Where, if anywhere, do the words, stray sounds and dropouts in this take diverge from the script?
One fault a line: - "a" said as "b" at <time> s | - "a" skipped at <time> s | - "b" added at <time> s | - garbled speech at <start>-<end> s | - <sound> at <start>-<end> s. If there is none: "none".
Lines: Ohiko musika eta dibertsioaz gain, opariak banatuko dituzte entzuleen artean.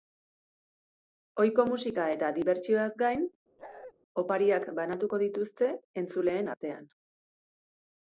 - bark at 3.6-3.9 s